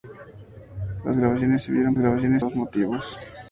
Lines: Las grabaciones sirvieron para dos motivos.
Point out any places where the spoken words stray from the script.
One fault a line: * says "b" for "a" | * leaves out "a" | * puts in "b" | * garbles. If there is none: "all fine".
* says "grabaciones" for "para"